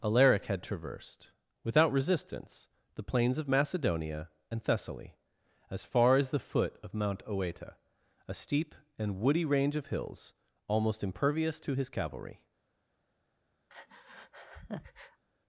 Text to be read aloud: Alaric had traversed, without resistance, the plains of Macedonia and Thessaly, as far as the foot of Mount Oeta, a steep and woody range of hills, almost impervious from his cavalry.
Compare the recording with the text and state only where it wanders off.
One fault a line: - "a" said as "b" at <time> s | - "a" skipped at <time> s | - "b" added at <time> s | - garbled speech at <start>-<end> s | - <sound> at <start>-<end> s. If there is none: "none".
- "from" said as "to" at 11.6 s
- breath at 13.7-15.2 s